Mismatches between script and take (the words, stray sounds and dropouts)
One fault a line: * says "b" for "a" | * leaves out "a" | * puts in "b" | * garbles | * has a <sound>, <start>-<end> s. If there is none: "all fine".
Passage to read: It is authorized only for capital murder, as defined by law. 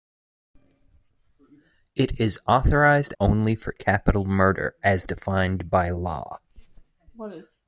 all fine